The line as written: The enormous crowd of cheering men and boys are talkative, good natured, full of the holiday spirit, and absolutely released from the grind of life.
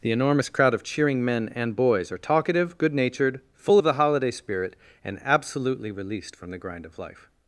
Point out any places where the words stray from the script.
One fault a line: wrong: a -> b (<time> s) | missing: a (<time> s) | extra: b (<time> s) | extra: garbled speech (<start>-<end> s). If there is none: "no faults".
no faults